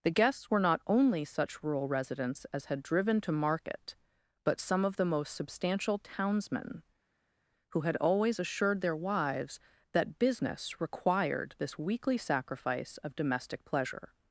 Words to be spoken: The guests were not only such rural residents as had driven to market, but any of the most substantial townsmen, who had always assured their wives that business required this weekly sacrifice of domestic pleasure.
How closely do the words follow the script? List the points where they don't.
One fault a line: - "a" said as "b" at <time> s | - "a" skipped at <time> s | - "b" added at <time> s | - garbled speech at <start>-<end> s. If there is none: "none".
- "any" said as "some" at 4.6 s